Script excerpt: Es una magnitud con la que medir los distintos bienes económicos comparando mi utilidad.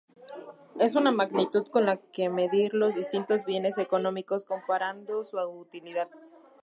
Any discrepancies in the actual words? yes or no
yes